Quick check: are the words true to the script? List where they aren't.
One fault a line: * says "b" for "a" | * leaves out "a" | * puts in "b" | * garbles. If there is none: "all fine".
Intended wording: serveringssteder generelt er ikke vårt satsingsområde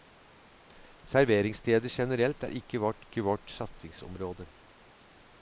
* puts in "ikke vårt"